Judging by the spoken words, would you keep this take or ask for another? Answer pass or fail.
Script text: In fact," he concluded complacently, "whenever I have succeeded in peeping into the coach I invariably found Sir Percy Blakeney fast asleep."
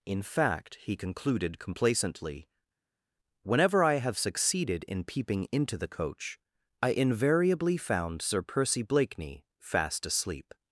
pass